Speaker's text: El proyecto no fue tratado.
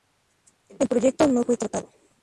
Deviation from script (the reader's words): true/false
false